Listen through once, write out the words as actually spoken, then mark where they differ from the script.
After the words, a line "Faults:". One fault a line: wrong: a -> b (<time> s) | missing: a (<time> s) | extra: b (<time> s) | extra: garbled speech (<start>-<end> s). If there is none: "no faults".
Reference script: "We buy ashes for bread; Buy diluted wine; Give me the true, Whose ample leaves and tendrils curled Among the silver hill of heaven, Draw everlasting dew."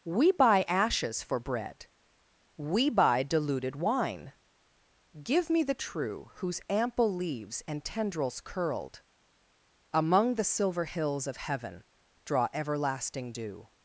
"We buy ashes for bread; We buy diluted wine; Give me the true, Whose ample leaves and tendrils curled Among the silver hills of heaven, Draw everlasting dew."
Faults:
extra: We (2.6 s)
wrong: hill -> hills (10.8 s)